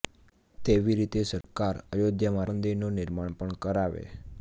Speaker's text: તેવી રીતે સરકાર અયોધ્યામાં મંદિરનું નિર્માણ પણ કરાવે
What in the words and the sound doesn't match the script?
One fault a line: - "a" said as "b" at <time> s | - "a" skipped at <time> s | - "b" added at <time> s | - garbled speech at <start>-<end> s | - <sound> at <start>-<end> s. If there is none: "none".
- dropout at 1.4-1.4 s